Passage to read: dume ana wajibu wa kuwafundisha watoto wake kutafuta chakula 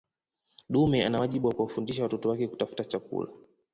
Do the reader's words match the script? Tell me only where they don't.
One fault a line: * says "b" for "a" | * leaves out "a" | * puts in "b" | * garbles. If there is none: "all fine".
all fine